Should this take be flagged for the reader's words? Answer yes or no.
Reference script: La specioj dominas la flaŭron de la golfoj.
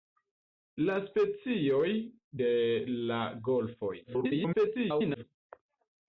yes